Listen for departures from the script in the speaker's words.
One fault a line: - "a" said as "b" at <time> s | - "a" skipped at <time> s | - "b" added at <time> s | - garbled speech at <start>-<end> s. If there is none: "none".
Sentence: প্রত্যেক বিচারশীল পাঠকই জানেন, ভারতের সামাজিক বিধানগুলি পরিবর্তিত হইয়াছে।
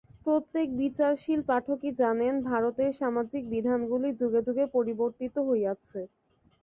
- "যুগে যুগে" added at 4.2 s